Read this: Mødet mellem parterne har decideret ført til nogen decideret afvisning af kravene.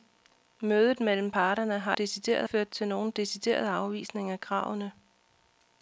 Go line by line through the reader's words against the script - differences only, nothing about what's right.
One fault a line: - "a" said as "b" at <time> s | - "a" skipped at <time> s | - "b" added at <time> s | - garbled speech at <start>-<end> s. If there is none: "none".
none